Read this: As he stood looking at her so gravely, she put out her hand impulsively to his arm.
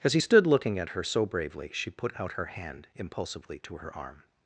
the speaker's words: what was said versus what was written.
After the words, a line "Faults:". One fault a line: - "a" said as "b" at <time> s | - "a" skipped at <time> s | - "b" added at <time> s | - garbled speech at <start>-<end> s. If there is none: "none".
As he stood looking at her so bravely, she put out her hand impulsively to her arm.
Faults:
- "gravely" said as "bravely" at 1.3 s
- "his" said as "her" at 3.8 s